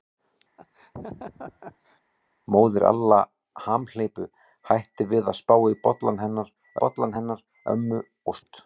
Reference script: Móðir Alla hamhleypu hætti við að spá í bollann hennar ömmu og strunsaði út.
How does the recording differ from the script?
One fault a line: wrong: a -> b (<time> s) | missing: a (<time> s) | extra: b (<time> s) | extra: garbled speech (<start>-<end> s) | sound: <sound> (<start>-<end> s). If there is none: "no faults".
sound: laugh (0.6-2.0 s)
extra: bollann hennar (6.8 s)
missing: strunsaði (8.4 s)